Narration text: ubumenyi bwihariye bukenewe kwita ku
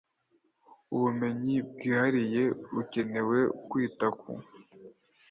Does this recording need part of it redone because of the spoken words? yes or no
no